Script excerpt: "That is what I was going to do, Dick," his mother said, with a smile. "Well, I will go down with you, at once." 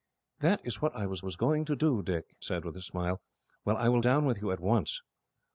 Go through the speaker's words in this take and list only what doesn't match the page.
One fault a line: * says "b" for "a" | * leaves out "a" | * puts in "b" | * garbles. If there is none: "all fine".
* puts in "was"
* leaves out "his mother"
* leaves out "go"